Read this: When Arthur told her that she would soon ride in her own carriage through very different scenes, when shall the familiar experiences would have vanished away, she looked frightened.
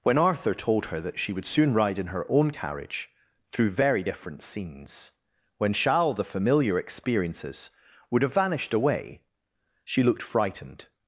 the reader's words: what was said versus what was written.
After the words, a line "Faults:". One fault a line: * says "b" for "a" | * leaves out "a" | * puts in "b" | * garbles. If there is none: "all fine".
When Arthur told her that she would soon ride in her own carriage through very different scenes, when shall the familiar experiences would have vanished away, she looked frightened.
Faults:
all fine